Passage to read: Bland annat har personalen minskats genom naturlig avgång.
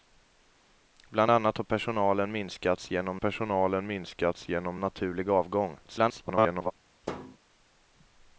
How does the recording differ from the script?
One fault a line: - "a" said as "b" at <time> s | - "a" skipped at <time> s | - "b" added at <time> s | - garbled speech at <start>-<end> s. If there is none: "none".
- "personalen minskats genom" added at 3.1 s
- garbled speech at 5.8-6.7 s